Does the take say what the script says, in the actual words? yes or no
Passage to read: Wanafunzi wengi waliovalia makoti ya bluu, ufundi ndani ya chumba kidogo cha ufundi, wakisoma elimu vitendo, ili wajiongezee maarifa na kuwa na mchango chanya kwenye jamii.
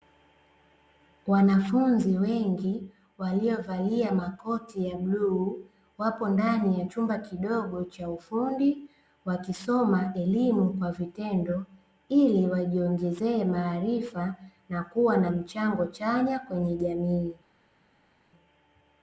no